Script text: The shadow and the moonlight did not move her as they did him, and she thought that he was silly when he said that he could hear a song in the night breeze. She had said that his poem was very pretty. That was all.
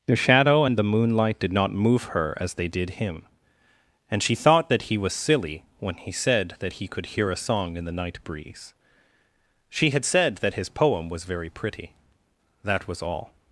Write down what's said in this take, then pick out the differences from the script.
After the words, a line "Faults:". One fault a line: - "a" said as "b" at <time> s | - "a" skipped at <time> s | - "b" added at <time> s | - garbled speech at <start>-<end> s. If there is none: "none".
The shadow and the moonlight did not move her as they did him, and she thought that he was silly when he said that he could hear a song in the night breeze. She had said that his poem was very pretty. That was all.
Faults:
none